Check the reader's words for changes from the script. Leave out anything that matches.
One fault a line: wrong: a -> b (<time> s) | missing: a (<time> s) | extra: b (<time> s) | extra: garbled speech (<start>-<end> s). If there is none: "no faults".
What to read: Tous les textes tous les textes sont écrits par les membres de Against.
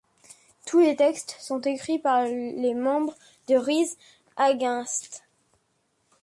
missing: tous les textes (1.4 s)
extra: Rise (3.5 s)